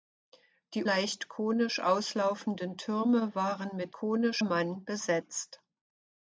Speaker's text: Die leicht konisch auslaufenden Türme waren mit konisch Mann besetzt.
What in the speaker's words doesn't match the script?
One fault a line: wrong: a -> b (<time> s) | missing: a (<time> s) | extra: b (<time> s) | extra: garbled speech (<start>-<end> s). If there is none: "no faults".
no faults